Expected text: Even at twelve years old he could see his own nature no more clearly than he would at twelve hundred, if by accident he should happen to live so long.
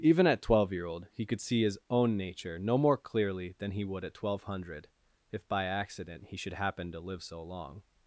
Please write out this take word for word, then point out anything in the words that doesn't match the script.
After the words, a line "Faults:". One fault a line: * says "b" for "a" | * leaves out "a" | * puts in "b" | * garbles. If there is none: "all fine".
Even at twelve year old he could see his own nature no more clearly than he would at twelve hundred, if by accident he should happen to live so long.
Faults:
* says "year" for "years"